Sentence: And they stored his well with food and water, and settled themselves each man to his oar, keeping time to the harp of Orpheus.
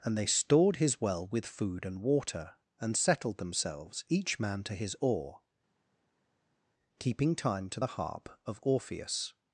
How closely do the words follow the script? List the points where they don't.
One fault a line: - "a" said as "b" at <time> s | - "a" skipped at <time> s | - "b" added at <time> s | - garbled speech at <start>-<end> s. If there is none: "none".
none